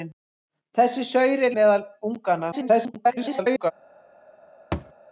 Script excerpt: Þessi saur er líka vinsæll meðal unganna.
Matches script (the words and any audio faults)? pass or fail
fail